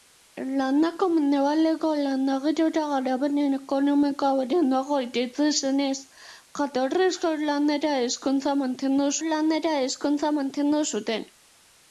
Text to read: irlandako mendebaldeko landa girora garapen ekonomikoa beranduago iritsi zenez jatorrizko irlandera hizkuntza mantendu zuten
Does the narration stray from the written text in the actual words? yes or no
yes